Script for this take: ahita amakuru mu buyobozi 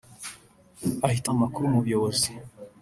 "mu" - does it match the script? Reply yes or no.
yes